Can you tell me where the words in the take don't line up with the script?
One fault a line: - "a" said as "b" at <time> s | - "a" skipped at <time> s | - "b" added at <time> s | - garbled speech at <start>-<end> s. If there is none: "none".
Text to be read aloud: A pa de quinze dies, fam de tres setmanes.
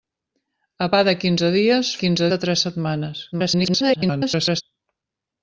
- "fam" said as "quinze" at 2.0 s
- garbled speech at 3.3-4.6 s